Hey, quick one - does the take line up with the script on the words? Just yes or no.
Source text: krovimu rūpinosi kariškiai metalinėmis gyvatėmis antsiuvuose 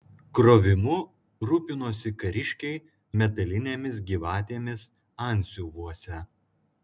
yes